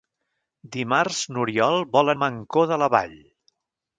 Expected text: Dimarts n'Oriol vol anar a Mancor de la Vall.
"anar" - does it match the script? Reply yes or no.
no